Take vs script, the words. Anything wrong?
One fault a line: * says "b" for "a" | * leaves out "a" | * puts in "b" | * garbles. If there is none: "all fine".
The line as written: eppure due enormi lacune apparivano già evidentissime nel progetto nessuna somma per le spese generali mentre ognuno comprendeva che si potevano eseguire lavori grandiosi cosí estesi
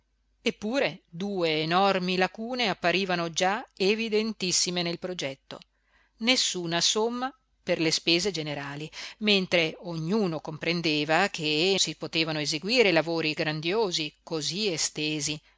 all fine